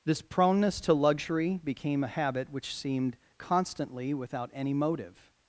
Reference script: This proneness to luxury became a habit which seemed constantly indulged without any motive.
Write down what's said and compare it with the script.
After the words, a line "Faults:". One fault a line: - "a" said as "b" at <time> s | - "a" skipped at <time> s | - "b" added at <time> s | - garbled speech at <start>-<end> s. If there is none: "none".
This proneness to luxury became a habit which seemed constantly without any motive.
Faults:
- "indulged" skipped at 4.1 s